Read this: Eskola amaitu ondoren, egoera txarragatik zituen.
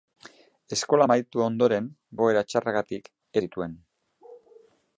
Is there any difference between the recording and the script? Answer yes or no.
no